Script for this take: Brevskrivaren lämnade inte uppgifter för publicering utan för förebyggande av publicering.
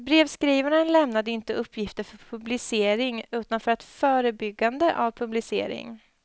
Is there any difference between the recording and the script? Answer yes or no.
no